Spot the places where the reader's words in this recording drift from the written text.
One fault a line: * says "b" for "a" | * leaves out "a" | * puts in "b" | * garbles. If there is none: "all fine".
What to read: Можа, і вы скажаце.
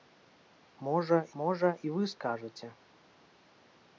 * puts in "можа"